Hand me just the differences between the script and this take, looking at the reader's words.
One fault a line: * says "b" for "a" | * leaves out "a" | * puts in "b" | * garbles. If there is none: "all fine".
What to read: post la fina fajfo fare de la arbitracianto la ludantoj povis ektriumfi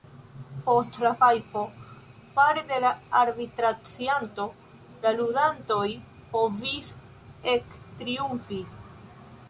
* leaves out "fina"